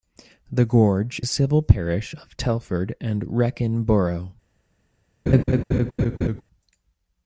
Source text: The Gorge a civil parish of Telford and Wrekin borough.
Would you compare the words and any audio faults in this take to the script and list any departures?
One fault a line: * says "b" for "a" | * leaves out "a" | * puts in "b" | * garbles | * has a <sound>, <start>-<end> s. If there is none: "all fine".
* has a laugh, 5.3-6.4 s